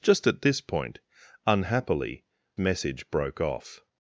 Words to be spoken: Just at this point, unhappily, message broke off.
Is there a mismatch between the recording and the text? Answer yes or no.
no